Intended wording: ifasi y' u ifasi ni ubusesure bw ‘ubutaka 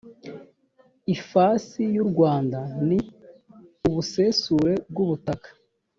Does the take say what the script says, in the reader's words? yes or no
no